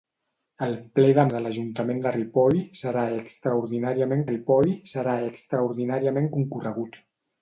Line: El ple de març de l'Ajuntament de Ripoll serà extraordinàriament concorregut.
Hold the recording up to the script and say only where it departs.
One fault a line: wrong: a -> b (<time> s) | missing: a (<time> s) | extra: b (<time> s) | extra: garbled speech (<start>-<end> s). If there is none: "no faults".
missing: març (1.2 s)
extra: Ripoll serà extraordinàriament (4.3 s)